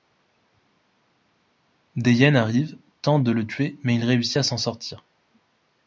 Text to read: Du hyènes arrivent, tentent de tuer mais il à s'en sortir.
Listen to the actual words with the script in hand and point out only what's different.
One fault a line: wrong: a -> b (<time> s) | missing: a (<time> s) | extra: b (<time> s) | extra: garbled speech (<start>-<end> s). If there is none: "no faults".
wrong: Du -> Des (1.9 s)
extra: le (3.3 s)
extra: réussit (4.0 s)